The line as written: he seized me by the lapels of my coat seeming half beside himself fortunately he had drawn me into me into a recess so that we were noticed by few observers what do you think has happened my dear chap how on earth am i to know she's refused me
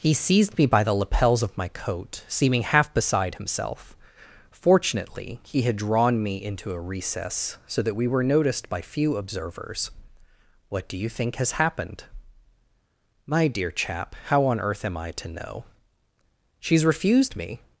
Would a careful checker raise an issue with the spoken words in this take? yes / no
yes